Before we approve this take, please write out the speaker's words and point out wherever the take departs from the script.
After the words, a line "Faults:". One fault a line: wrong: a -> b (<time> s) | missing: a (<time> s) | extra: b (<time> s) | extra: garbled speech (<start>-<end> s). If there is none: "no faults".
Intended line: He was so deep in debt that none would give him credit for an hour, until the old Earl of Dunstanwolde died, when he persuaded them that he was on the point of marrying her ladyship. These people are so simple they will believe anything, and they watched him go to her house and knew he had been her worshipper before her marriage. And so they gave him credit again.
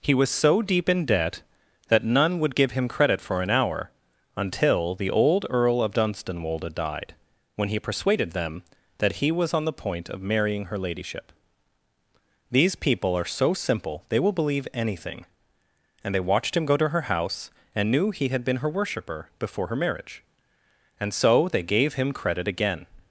He was so deep in debt that none would give him credit for an hour, until the old Earl of Dunstanwolde died, when he persuaded them that he was on the point of marrying her ladyship. These people are so simple they will believe anything, and they watched him go to her house and knew he had been her worshipper before her marriage. And so they gave him credit again.
Faults:
no faults